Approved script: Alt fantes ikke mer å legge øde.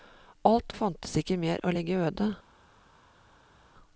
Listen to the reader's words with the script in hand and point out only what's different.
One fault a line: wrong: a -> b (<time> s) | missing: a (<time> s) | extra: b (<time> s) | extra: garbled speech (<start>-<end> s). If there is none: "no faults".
no faults